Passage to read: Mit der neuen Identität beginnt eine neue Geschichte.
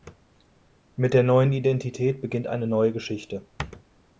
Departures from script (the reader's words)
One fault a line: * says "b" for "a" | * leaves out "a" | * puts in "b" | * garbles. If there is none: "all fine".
all fine